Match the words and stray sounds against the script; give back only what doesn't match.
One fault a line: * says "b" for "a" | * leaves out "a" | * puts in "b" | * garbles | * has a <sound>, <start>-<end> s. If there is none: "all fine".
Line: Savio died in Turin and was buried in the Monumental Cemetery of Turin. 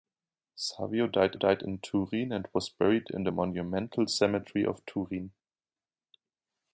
* puts in "died"